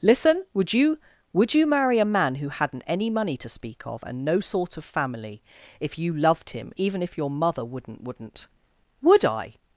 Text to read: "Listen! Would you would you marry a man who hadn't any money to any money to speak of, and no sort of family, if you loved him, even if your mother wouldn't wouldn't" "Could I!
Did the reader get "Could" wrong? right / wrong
wrong